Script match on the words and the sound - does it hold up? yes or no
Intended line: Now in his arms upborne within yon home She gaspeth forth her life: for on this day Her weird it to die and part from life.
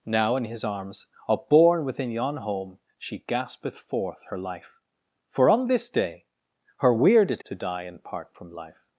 yes